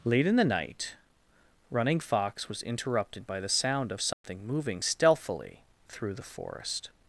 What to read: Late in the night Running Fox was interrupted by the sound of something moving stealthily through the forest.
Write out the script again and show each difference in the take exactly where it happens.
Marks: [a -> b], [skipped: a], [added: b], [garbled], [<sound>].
Late in the night Running Fox was interrupted by the sound of something [dropout] moving stealthily through the forest.